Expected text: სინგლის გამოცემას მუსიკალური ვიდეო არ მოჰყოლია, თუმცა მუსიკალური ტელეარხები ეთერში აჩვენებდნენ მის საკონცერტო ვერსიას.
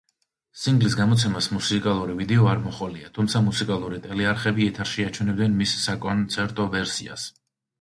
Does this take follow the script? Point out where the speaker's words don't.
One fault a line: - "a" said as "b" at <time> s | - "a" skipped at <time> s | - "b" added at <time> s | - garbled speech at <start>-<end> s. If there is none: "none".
none